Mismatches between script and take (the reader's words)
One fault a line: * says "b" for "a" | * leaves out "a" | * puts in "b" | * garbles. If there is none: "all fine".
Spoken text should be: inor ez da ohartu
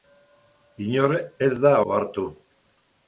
all fine